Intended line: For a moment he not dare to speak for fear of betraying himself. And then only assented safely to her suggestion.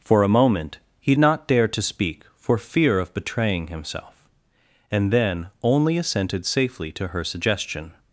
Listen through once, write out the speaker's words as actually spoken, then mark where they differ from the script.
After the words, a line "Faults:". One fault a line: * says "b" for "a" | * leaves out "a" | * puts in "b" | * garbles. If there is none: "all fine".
For a moment he not dare to speak for fear of betraying himself. And then only assented safely to her suggestion.
Faults:
all fine